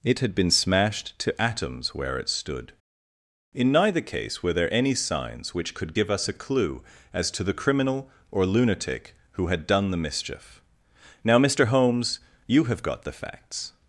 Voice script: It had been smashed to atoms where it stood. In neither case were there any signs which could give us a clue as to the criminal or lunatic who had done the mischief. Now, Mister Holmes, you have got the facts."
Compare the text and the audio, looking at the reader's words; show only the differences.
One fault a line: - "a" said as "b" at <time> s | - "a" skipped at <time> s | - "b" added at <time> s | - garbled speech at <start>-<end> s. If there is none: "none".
none